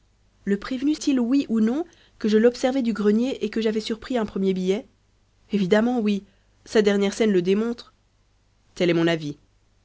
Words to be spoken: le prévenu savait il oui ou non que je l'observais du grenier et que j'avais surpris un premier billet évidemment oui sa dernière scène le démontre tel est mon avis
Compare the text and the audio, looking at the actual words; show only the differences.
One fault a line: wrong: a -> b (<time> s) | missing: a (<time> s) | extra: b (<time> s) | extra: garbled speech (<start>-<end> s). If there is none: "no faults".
missing: savait (0.9 s)